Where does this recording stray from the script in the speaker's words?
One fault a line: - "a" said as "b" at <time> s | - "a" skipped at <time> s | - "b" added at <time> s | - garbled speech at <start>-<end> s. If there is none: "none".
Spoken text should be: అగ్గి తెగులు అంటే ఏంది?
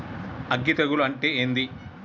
none